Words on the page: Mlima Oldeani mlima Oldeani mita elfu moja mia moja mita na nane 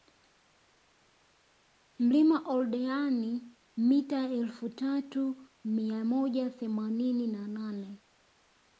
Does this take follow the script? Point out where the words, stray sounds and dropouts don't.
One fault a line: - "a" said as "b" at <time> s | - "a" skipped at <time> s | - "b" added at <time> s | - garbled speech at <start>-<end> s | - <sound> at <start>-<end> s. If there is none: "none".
- "mlima Oldeani" skipped at 3.5 s
- "moja" said as "tatu" at 4.7 s
- "mita" said as "themanini" at 6.5 s